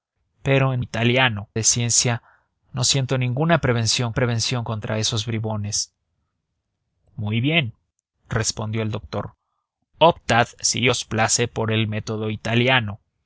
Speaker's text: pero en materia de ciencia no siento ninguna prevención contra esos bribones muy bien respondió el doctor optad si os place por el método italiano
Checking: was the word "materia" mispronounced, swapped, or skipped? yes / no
yes